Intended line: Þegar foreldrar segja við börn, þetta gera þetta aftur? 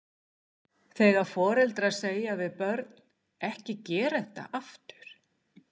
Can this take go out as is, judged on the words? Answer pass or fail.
fail